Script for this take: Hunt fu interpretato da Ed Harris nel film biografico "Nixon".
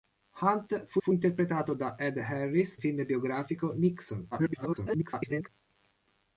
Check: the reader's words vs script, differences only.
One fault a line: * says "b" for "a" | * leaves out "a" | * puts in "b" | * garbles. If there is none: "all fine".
* puts in "fu"
* leaves out "nel"
* garbles